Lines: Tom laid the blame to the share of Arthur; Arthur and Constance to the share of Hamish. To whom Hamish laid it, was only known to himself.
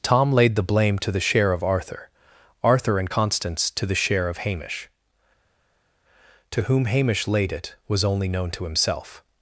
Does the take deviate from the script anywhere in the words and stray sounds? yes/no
no